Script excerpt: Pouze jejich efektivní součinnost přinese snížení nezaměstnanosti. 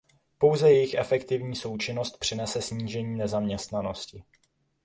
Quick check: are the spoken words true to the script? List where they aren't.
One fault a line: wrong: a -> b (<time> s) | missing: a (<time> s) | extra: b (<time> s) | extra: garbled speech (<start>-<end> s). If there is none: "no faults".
no faults